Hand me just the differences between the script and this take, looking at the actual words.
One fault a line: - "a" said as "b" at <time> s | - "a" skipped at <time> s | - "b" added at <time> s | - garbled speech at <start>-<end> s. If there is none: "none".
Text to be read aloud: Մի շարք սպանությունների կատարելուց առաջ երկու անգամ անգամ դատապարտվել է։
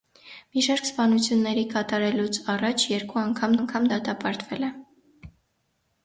none